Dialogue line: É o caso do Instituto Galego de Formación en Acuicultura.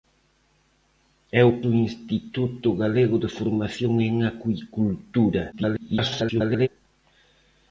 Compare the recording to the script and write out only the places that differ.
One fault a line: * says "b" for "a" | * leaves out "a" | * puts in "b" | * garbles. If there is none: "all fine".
* leaves out "caso"
* garbles